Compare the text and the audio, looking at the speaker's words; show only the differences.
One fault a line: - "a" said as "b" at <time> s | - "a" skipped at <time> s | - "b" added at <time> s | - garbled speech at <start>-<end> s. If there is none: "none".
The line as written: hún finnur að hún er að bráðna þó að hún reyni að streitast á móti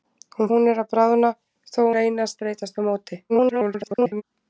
- "finnur að" skipped at 0.5 s
- "hún" skipped at 1.9 s
- garbled speech at 3.3-4.2 s